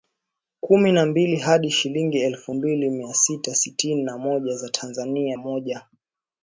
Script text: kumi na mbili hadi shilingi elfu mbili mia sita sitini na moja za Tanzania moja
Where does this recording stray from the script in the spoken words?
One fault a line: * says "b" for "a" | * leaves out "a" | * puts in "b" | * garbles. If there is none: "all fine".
all fine